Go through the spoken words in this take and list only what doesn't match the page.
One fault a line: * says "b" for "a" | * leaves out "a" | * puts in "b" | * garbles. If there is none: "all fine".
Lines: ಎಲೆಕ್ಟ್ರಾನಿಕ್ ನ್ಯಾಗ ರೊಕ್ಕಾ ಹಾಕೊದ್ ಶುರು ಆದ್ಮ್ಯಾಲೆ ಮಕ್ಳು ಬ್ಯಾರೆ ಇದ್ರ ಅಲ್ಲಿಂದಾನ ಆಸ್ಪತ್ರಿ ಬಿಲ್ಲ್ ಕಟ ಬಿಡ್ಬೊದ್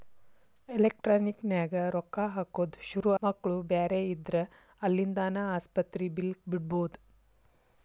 * leaves out "ಆದ್ಮ್ಯಾಲೆ"
* leaves out "ಕಟ"